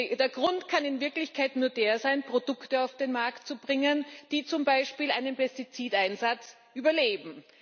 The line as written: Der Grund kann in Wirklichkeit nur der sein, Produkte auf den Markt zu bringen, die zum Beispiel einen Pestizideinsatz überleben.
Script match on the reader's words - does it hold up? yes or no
yes